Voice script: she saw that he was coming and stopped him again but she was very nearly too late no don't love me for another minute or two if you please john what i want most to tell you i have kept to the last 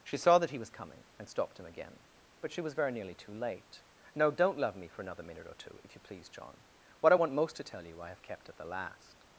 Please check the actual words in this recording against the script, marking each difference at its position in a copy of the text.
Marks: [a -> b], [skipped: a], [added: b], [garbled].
she saw that he was coming and stopped him again but she was very nearly too late no don't love me for another minute or two if you please john what i want most to tell you i have kept [to -> at] the last